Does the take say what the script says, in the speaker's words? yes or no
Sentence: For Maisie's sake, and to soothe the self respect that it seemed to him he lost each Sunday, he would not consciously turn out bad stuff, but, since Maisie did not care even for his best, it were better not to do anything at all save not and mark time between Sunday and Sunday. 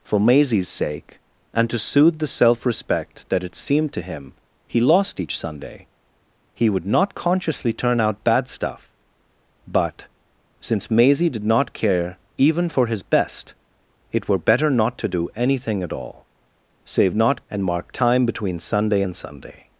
yes